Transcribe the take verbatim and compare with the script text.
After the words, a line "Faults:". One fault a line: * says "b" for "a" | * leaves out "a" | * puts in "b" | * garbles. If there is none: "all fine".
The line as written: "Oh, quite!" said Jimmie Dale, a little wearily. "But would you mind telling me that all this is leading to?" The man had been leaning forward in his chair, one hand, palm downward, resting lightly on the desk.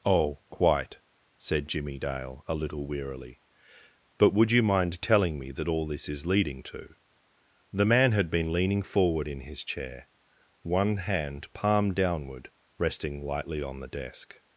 "Oh, quite!" said Jimmie Dale, a little wearily. "But would you mind telling me that all this is leading to?" The man had been leaning forward in his chair, one hand, palm downward, resting lightly on the desk.
Faults:
all fine